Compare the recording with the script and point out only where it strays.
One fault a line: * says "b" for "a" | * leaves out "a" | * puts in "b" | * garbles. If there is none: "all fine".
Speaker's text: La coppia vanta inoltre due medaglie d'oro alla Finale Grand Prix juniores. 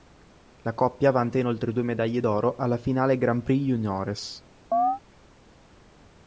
all fine